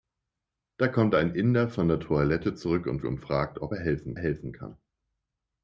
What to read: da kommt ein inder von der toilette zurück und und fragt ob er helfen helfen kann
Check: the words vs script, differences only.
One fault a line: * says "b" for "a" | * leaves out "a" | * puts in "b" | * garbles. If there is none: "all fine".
all fine